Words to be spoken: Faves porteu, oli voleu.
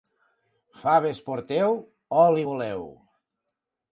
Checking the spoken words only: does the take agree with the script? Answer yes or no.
yes